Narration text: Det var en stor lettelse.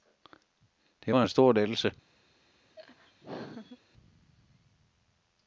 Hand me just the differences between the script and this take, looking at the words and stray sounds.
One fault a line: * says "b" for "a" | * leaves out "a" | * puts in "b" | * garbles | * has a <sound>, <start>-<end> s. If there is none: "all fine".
* has a laugh, 2.8-3.8 s